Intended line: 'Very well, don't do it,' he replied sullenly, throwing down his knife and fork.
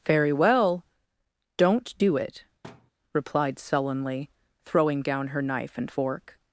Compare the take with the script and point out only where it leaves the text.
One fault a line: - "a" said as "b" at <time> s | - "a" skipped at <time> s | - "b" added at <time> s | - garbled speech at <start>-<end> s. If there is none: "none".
- "he" skipped at 2.4 s
- "his" said as "her" at 5.3 s